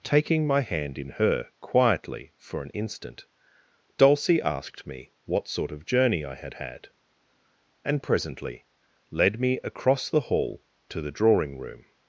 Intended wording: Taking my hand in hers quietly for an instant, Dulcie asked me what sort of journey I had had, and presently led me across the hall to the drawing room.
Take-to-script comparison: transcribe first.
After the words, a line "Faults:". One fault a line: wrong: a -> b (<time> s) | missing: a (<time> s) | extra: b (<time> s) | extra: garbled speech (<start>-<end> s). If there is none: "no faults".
Taking my hand in her quietly for an instant, Dulcie asked me what sort of journey I had had, and presently led me across the hall to the drawing room.
Faults:
wrong: hers -> her (1.1 s)